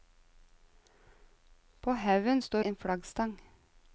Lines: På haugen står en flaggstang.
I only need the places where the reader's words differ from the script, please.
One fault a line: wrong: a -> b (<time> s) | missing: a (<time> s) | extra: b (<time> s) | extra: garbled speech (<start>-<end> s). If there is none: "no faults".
no faults